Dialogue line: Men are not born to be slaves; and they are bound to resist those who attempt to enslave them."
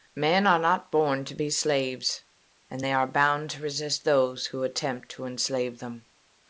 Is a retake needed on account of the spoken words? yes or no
no